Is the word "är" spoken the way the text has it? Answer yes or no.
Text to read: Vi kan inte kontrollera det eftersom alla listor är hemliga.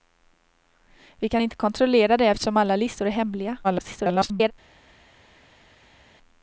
yes